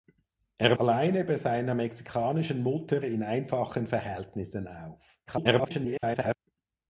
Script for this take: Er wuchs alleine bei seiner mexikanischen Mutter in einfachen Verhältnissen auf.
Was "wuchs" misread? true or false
true